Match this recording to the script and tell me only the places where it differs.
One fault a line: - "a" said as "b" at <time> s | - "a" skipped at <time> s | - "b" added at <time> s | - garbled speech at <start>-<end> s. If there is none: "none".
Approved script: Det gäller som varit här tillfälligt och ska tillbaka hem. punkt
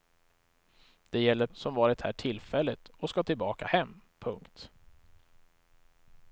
none